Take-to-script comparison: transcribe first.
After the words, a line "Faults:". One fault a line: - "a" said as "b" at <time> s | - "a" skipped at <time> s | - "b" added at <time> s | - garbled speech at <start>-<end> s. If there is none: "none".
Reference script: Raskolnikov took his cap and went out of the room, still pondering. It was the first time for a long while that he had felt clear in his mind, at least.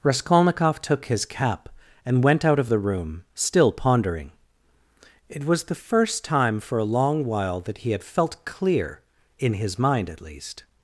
Raskolnikov took his cap and went out of the room, still pondering. It was the first time for a long while that he had felt clear in his mind, at least.
Faults:
none